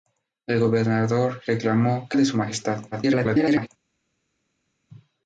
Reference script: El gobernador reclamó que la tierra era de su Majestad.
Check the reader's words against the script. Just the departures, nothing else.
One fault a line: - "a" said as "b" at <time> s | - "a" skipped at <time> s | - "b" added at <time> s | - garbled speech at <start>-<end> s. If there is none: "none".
- "la tierra era" skipped at 2.2 s
- garbled speech at 2.9-3.7 s